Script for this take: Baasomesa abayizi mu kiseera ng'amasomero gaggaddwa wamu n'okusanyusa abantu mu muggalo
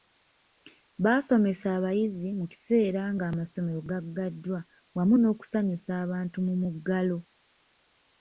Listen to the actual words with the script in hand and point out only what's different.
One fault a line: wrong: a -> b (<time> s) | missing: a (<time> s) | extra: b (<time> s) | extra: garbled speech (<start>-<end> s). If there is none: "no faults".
no faults